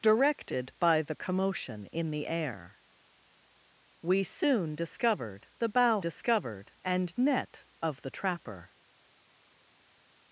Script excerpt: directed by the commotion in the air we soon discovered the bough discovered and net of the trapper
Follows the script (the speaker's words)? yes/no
yes